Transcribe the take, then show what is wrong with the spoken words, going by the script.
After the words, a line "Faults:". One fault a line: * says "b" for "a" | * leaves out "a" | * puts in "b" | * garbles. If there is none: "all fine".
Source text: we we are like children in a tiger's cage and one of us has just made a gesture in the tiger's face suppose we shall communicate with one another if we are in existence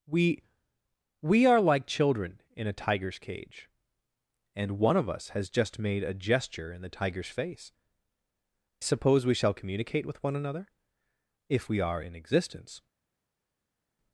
we we are like children in a tiger's cage and one of us has just made a gesture in the tiger's face suppose we shall communicate with one another if we are in existence
Faults:
all fine